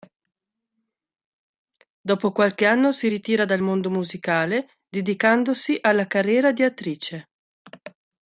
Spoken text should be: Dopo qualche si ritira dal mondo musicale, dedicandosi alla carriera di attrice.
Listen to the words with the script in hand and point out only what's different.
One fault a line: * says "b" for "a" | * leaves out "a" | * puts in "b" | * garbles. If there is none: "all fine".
* puts in "anno"